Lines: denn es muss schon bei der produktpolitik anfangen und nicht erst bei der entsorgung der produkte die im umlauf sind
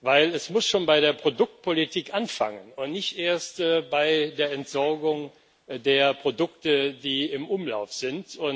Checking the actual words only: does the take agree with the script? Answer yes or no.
yes